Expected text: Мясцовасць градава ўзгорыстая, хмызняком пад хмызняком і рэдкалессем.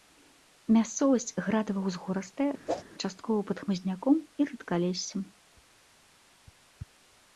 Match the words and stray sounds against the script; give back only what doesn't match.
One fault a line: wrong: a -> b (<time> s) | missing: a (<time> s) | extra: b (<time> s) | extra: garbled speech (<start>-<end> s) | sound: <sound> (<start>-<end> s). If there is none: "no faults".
sound: whoosh (2.7-2.8 s)
wrong: хмызняком -> часткова (3.0 s)